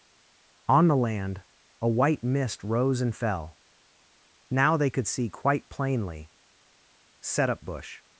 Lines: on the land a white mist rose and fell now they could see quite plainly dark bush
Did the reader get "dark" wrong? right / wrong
wrong